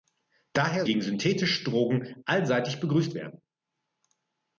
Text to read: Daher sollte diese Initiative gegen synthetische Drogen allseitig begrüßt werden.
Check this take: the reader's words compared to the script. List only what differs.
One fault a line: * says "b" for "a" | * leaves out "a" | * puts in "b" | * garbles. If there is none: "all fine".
* leaves out "sollte diese Initiative"